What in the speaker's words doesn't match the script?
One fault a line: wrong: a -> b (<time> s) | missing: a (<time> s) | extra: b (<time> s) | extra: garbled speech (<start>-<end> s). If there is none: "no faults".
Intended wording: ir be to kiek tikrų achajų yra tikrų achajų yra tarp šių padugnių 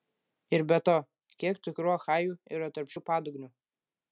missing: tikrų achajų yra (2.7 s)